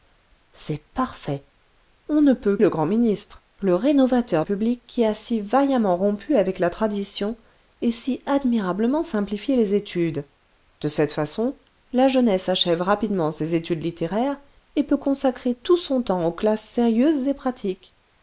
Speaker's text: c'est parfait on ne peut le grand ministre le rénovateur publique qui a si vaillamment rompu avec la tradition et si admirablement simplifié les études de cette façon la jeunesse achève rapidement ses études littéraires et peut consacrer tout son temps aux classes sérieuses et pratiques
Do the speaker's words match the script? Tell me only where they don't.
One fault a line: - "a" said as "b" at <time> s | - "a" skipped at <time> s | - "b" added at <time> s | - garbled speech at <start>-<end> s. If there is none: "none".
none